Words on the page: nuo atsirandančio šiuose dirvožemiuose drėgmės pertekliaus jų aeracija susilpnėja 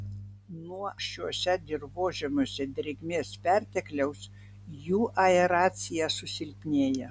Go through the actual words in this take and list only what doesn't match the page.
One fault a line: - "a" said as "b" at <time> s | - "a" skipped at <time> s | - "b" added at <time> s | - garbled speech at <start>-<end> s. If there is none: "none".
- "atsirandančio" skipped at 0.9 s